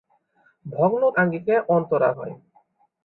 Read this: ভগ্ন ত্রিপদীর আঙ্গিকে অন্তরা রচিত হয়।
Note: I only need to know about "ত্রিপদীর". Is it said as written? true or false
false